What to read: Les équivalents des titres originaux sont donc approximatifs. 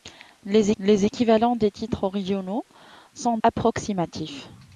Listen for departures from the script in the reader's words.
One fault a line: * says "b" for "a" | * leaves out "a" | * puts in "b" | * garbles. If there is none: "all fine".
* puts in "les"
* leaves out "donc"